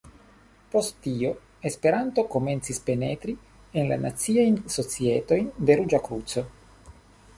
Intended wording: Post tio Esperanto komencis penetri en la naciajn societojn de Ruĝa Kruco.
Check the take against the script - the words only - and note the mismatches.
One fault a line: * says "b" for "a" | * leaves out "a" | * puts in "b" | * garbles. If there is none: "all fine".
all fine